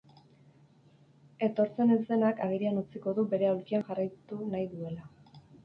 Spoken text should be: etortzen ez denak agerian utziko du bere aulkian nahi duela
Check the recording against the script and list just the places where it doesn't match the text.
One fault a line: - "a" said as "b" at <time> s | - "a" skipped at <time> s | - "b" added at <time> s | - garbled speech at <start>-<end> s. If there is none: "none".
- "jarraitu" added at 3.9 s